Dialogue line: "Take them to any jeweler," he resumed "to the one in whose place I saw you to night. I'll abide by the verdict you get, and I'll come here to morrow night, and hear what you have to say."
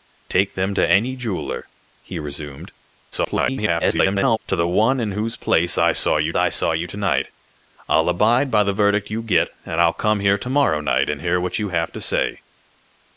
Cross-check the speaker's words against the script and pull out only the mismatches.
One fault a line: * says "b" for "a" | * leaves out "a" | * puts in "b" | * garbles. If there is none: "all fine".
* garbles
* puts in "I saw you"